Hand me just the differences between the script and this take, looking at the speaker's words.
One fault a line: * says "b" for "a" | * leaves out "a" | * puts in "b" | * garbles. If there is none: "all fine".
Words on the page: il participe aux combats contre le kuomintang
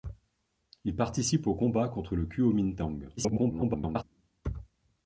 * garbles